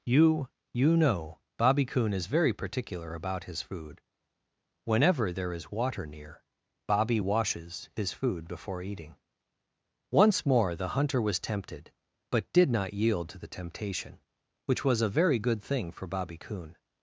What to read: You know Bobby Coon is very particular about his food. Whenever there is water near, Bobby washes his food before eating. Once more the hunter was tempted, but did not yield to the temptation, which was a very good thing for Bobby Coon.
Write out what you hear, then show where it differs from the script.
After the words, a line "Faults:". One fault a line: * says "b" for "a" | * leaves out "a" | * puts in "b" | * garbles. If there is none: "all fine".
You you know Bobby Coon is very particular about his food. Whenever there is water near, Bobby washes his food before eating. Once more the hunter was tempted, but did not yield to the temptation, which was a very good thing for Bobby Coon.
Faults:
* puts in "you"